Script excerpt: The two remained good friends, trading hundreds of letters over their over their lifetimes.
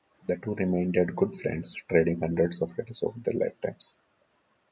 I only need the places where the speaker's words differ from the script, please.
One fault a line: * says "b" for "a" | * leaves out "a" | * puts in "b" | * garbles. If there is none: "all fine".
* leaves out "over their"